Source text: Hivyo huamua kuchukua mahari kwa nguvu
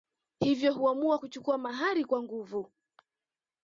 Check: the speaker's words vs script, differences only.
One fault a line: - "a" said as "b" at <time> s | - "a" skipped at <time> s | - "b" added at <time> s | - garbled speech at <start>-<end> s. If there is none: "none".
none